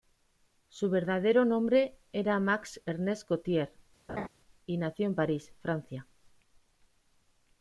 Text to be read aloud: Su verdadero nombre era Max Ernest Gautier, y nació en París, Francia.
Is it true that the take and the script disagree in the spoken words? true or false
false